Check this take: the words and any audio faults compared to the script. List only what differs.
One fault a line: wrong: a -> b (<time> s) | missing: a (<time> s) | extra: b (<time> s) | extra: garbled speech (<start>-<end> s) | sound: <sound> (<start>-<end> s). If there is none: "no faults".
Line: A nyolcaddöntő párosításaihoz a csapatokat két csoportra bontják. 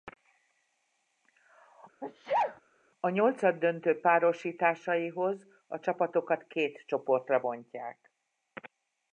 sound: sneeze (2.0-2.6 s)